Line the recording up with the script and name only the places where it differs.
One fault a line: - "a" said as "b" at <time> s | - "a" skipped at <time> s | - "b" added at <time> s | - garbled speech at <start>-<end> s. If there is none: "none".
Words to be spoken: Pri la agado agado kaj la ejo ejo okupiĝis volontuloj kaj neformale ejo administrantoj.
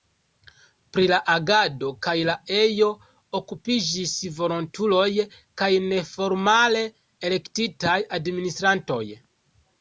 - "agado" skipped at 1.9 s
- "ejo" skipped at 2.9 s
- "ejo" said as "elektitaj" at 7.3 s